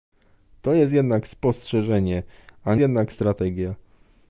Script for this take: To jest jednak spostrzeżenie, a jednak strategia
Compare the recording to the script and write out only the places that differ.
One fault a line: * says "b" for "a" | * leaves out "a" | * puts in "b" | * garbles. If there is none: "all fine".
all fine